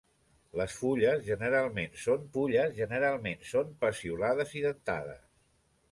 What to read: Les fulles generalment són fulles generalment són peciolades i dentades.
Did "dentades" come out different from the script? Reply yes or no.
no